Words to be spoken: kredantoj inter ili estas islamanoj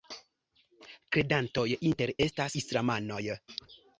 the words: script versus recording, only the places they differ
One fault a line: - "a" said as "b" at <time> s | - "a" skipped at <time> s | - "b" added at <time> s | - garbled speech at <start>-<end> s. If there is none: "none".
- "ili" skipped at 2.1 s